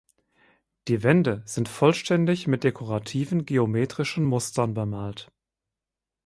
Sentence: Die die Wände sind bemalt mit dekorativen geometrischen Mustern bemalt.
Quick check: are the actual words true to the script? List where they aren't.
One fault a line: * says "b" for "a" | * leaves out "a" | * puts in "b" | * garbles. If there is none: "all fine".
* leaves out "die"
* says "vollständig" for "bemalt"